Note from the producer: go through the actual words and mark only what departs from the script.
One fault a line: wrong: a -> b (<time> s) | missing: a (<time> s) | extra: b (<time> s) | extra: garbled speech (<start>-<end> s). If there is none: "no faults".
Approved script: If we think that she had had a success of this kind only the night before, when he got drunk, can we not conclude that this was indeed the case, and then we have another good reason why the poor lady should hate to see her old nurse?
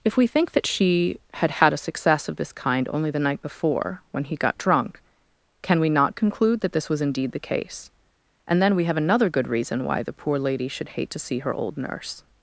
no faults